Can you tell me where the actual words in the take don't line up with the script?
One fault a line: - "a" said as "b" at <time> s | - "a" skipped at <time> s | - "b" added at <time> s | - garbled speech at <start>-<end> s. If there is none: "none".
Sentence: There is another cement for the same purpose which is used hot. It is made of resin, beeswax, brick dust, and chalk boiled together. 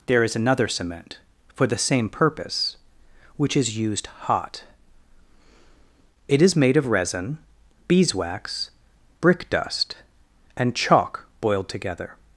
none